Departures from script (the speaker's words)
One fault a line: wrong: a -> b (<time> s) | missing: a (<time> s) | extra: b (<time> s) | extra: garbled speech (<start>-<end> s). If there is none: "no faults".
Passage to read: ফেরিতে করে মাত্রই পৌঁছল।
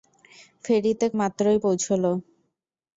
missing: করে (1.1 s)